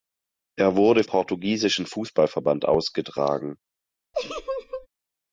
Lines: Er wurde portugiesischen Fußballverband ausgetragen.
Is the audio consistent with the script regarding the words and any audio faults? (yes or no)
no